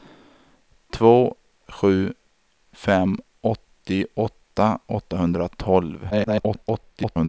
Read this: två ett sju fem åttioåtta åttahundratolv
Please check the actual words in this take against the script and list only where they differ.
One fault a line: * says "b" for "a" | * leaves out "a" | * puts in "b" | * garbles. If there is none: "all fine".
* leaves out "ett"
* garbles